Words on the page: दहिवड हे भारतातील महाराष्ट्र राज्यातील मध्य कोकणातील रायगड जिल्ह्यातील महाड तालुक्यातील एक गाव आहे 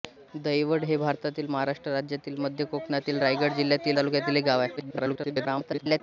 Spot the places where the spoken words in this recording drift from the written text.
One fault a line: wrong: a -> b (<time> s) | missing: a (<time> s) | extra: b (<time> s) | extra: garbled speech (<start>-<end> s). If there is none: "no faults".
missing: महाड (4.0 s)
extra: garbled speech (4.8-6.0 s)